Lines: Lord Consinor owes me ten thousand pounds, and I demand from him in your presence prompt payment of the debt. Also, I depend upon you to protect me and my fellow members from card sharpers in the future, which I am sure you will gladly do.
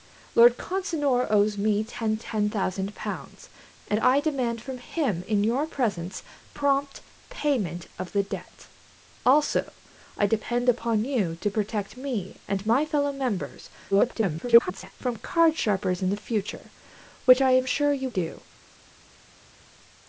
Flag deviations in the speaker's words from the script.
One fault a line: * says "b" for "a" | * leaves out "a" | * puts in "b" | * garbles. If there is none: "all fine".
* puts in "ten"
* garbles
* leaves out "will gladly"